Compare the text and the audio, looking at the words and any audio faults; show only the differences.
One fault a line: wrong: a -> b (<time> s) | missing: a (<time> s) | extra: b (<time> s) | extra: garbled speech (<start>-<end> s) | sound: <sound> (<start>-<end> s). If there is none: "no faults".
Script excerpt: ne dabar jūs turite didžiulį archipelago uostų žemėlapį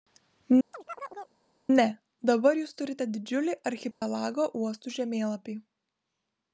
sound: chirp (0.7-1.4 s)
sound: dropout (3.9-4.0 s)